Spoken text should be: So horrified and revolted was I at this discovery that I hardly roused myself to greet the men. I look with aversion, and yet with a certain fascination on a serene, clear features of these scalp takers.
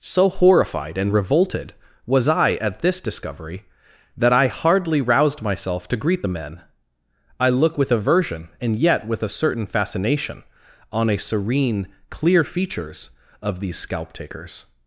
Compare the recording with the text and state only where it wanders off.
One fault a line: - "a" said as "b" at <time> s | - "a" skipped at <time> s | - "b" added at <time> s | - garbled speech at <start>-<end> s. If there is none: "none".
none